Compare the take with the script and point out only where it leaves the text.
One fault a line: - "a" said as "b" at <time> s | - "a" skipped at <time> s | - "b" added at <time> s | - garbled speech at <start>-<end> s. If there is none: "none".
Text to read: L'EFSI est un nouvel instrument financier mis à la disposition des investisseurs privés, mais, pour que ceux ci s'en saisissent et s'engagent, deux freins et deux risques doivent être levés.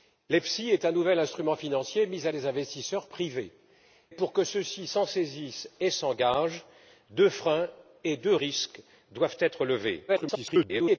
- "la disposition" skipped at 2.3 s
- "mais" skipped at 3.5 s
- garbled speech at 10.1-11.0 s